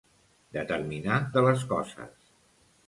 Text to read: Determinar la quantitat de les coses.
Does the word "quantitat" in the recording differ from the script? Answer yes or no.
yes